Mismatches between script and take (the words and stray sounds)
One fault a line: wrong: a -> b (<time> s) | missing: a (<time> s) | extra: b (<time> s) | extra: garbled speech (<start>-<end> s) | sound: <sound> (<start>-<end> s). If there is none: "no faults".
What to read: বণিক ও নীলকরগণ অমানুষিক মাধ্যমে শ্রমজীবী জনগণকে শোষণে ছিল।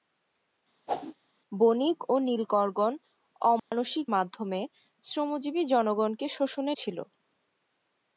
sound: whoosh (0.9-1.1 s)
sound: dropout (3.6-3.7 s)